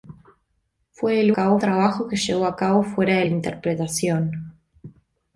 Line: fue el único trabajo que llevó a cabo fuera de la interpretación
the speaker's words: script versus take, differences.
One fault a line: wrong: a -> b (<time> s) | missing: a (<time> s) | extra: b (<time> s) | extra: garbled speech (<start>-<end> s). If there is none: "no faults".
wrong: único -> cabo (1.3 s)